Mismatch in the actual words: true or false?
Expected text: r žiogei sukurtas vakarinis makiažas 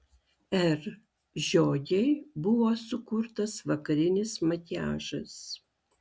true